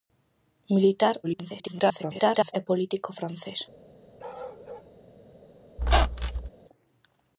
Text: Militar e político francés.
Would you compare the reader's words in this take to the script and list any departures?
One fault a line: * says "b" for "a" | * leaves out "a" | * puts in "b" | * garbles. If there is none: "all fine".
* garbles